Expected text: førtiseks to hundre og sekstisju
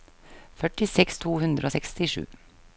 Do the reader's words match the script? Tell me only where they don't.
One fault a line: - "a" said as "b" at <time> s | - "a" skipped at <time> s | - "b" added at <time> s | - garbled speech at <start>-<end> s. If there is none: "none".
none